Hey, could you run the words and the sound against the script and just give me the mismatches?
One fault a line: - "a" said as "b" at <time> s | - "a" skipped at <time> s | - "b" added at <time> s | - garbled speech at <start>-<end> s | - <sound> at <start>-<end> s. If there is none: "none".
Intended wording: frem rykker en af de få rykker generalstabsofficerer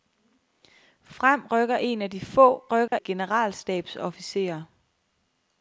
- dropout at 2.9-2.9 s